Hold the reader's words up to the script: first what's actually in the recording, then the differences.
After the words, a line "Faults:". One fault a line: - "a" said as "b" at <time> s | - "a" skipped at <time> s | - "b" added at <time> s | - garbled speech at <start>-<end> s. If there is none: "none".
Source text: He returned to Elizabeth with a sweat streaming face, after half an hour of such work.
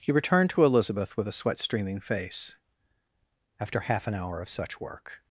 He returned to Elizabeth with a sweat streaming face, after half an hour of such work.
Faults:
none